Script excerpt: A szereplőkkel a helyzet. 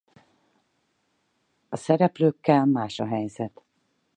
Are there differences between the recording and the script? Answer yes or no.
yes